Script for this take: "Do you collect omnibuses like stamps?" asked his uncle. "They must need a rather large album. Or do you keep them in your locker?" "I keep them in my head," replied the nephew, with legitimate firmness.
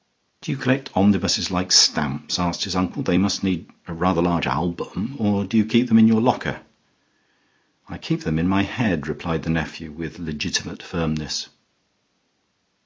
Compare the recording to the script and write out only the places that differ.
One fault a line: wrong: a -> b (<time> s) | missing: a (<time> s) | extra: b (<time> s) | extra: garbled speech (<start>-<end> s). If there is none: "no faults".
no faults